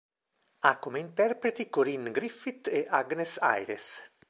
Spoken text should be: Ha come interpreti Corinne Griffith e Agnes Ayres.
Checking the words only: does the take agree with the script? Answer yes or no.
yes